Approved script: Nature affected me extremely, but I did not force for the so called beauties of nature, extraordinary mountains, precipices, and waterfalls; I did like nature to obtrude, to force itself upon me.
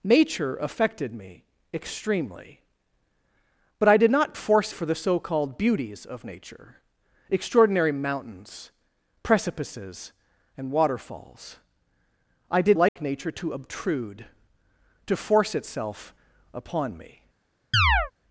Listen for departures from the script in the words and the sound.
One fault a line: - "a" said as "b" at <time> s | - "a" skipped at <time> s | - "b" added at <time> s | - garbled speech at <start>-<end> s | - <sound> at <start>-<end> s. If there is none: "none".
- dropout at 12.9-13.0 s
- chirp at 17.7-18.1 s